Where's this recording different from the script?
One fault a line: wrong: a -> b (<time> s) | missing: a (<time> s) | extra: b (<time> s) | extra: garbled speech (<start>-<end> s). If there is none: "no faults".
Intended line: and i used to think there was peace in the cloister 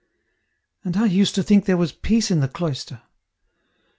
no faults